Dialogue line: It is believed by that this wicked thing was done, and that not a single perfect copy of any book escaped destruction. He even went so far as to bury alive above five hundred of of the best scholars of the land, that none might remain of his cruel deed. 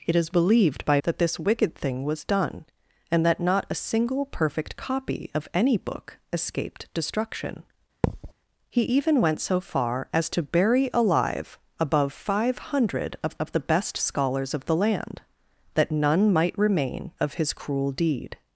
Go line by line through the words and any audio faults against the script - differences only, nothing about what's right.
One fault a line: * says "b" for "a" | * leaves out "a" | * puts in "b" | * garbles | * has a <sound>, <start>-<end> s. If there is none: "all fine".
* has a thud, 8.0-8.3 s